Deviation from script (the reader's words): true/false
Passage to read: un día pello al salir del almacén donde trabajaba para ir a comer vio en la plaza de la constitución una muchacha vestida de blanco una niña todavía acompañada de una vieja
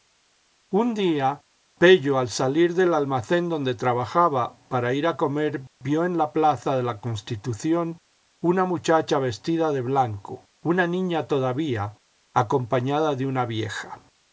false